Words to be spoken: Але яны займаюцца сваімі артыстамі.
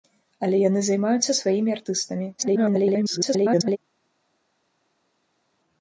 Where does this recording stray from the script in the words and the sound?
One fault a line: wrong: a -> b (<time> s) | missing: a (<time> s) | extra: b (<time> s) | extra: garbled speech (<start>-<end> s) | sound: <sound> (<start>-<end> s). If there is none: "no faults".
extra: garbled speech (2.4-3.8 s)